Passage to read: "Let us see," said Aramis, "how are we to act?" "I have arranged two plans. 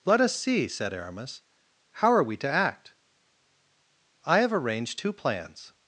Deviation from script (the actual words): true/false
false